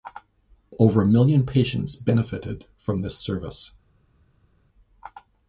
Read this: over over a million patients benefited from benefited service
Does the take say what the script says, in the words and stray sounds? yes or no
no